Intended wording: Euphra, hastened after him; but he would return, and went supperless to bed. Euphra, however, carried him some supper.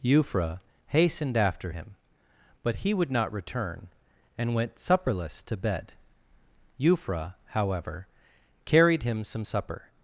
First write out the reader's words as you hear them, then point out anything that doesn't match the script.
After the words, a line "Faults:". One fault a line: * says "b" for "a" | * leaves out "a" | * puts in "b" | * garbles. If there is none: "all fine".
Euphra, hastened after him; but he would not return, and went supperless to bed. Euphra, however, carried him some supper.
Faults:
* puts in "not"